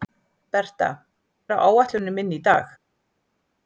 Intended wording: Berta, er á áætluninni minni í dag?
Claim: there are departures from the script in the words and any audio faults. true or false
false